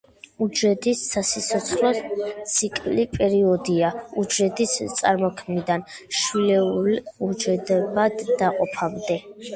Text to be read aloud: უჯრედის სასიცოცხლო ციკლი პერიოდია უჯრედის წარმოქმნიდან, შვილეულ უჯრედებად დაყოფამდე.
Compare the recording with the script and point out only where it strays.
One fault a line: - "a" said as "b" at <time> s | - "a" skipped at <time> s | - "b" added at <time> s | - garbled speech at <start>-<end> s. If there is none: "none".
none